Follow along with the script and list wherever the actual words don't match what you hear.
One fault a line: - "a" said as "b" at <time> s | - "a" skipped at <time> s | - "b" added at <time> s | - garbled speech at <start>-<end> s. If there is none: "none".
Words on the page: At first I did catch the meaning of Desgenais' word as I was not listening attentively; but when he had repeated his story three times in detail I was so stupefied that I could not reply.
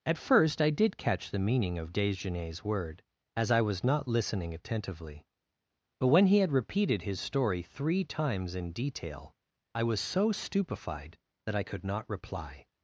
none